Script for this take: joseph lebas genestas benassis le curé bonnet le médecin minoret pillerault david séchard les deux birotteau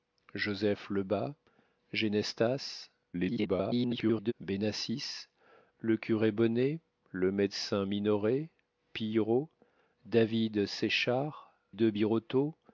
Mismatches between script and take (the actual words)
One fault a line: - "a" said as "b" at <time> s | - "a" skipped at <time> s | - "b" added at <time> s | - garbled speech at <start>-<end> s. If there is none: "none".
- garbled speech at 3.1-4.3 s
- "les" skipped at 11.5 s